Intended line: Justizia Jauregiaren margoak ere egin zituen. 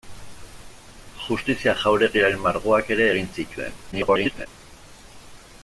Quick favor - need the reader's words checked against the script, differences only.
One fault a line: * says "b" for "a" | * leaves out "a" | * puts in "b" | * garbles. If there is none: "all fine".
* garbles